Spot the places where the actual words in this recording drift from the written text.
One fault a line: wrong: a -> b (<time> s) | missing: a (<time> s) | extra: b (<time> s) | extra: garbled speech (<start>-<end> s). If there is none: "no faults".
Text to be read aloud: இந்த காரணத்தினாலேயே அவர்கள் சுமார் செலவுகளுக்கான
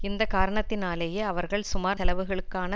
no faults